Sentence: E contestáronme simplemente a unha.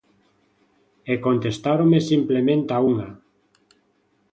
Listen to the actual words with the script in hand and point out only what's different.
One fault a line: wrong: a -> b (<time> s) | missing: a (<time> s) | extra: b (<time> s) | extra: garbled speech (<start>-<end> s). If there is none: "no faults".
no faults